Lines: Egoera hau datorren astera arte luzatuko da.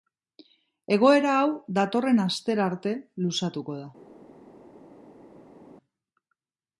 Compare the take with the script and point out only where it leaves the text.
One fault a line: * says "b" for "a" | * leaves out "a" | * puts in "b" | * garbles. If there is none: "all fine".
all fine